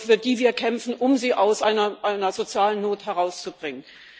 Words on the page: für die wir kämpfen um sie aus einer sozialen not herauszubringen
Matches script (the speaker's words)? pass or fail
pass